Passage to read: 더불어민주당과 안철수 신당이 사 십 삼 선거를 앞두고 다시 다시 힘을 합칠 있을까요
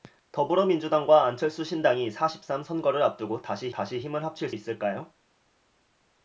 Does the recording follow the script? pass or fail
pass